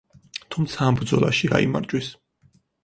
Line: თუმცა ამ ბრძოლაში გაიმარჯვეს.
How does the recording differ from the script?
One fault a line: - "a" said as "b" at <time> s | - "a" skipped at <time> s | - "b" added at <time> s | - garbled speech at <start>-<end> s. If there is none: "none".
none